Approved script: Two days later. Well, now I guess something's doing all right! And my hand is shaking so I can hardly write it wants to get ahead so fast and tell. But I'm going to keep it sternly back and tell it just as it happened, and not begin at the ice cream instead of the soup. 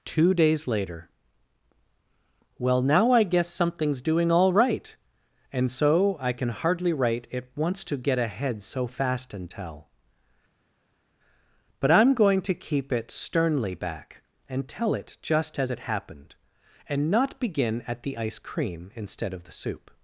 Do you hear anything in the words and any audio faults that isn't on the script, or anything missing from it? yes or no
yes